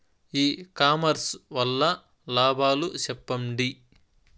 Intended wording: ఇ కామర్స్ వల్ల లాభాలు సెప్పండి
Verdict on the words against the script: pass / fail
pass